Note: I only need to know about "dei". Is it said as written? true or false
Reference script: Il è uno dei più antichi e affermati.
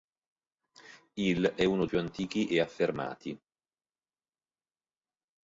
false